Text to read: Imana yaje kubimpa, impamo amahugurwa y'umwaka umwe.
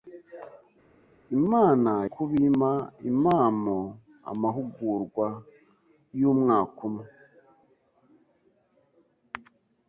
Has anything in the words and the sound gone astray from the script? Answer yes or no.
yes